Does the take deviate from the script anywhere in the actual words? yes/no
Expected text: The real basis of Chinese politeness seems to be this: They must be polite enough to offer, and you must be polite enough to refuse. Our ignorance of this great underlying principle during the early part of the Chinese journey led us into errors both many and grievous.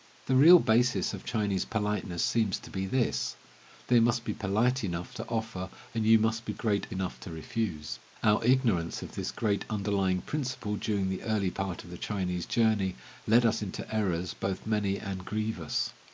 yes